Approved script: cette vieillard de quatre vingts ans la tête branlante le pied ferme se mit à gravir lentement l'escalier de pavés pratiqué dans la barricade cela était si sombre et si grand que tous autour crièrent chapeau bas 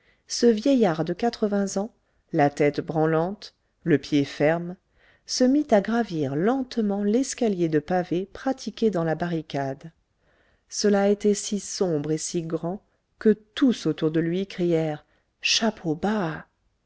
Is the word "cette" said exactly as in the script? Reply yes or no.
no